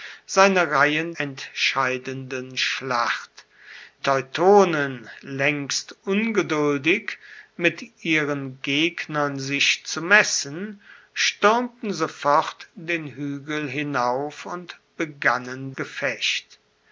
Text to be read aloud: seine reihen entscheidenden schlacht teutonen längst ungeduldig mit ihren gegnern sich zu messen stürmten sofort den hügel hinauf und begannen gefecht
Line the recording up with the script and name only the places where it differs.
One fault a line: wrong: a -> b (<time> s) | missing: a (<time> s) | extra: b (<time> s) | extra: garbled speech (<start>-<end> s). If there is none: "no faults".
no faults